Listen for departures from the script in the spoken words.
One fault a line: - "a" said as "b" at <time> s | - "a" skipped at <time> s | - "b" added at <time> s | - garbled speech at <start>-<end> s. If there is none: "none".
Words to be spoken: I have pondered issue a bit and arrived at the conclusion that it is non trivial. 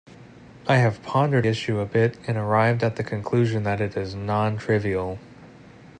none